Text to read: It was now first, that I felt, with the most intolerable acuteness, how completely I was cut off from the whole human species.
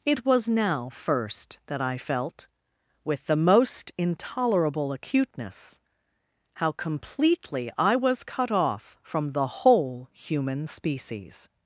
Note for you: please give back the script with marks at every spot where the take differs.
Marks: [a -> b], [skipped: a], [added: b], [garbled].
It was now first, that I felt, with the most intolerable acuteness, how completely I was cut off from the whole human species.